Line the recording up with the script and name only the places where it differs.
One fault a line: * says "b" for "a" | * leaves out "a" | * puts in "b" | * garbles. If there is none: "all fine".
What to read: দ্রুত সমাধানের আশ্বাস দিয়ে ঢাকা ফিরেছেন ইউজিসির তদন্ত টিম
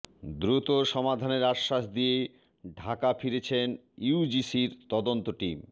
all fine